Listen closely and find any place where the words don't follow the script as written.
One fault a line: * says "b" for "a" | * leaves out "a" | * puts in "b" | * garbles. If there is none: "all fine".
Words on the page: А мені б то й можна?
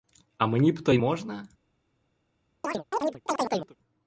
all fine